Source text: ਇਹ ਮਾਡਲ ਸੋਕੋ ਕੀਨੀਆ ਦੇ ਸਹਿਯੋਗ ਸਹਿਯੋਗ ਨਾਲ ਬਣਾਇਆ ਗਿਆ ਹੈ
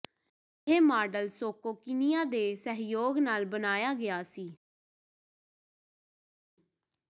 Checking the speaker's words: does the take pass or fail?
fail